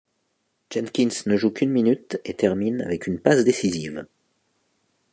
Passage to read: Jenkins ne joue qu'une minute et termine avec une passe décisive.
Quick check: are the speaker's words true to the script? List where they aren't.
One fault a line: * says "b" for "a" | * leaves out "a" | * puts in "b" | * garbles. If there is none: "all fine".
all fine